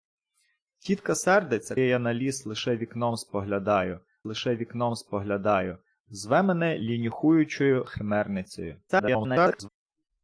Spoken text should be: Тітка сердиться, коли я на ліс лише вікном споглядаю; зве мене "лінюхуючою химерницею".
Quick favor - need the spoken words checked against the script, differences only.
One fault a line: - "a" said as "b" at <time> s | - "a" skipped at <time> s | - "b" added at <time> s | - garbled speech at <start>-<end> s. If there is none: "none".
- "коли" skipped at 1.8 s
- "лише вікном споглядаю" added at 4.2 s
- garbled speech at 8.9-9.7 s